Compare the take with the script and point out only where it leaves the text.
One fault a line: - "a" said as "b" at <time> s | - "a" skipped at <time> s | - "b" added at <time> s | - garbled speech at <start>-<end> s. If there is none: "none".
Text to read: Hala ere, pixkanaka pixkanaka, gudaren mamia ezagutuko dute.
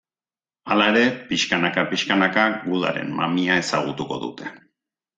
none